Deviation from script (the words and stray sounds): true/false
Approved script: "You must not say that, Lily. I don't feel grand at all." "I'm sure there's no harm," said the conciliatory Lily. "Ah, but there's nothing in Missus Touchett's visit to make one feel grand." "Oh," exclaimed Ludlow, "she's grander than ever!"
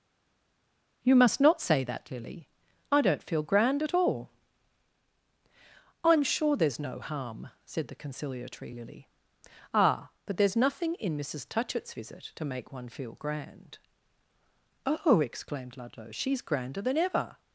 false